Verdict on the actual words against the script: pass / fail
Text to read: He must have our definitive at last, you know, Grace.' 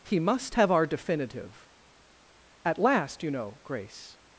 pass